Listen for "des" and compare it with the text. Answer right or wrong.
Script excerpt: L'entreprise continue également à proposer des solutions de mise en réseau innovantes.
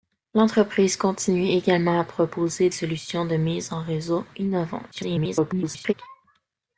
wrong